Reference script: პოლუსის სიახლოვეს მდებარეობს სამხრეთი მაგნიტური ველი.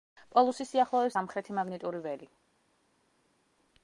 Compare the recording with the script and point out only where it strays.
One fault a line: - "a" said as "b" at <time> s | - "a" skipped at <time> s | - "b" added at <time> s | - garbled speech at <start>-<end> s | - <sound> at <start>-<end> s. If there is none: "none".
- "მდებარეობს" skipped at 1.2 s